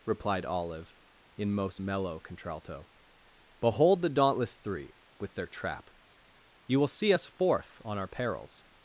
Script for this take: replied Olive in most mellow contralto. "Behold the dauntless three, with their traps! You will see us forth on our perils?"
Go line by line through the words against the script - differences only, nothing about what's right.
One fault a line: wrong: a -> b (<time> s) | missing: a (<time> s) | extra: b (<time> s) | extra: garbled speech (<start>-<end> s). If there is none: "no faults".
wrong: traps -> trap (5.5 s)